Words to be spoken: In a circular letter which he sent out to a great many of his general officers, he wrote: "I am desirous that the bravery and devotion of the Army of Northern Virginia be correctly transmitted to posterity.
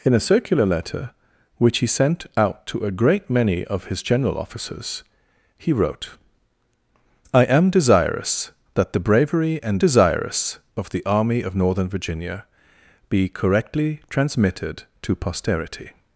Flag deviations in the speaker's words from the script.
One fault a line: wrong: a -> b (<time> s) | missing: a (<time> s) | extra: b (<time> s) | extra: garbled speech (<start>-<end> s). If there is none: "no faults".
wrong: devotion -> desirous (9.8 s)